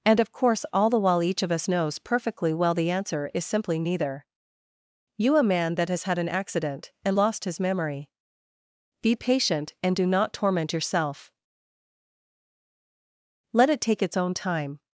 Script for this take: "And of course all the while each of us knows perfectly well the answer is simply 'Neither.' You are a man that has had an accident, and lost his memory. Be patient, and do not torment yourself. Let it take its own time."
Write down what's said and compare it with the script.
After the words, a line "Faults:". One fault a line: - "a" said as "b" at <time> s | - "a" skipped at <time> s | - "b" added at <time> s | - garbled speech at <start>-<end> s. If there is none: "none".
"And of course all the while each of us knows perfectly well the answer is simply 'Neither.' You a man that has had an accident, and lost his memory. Be patient, and do not torment yourself. Let it take its own time."
Faults:
- "are" skipped at 5.4 s